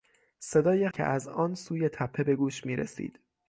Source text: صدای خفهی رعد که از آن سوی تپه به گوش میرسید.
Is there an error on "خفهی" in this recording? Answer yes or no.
yes